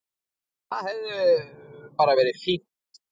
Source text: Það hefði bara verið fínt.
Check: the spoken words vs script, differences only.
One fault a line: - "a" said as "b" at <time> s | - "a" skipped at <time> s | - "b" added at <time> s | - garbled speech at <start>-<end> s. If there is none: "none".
none